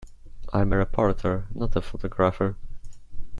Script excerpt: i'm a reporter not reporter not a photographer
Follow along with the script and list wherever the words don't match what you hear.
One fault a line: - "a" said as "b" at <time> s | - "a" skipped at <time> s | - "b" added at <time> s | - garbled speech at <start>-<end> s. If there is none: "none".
- "reporter not" skipped at 1.7 s